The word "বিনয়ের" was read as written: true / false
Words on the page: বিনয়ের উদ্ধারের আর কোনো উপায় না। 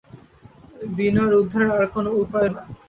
true